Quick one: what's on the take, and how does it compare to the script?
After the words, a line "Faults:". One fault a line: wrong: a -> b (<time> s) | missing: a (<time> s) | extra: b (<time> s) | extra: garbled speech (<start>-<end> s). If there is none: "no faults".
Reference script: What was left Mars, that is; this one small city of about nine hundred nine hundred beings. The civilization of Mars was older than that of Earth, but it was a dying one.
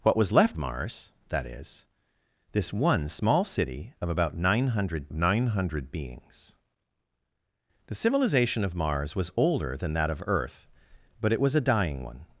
What was left Mars, that is; this one small city of about nine hundred nine hundred beings. The civilization of Mars was older than that of Earth, but it was a dying one.
Faults:
no faults